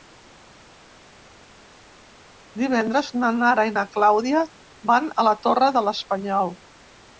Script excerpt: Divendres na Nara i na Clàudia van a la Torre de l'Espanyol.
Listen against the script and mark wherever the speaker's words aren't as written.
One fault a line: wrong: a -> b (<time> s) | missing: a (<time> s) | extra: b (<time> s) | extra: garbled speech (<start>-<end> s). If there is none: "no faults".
no faults